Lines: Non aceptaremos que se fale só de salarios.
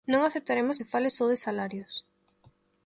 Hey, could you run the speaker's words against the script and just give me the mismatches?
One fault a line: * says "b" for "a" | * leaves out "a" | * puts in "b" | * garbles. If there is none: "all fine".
* leaves out "que"